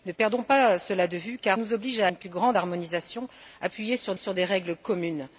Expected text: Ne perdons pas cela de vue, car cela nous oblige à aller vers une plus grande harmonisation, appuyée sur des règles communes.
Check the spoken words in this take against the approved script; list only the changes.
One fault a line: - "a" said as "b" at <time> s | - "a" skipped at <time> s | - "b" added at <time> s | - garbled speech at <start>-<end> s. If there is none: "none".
- "cela" skipped at 1.6 s
- "aller vers" skipped at 2.1 s
- "sur" added at 4.1 s